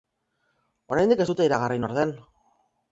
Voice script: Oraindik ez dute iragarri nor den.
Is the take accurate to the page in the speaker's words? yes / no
yes